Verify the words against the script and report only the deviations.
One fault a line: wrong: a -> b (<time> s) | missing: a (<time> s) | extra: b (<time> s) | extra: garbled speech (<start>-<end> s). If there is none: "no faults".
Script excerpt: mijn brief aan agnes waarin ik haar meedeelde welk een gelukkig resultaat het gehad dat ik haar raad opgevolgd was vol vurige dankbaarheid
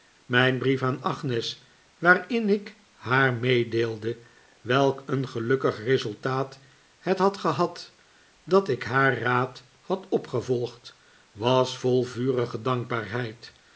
extra: had (7.2 s)
extra: had (9.8 s)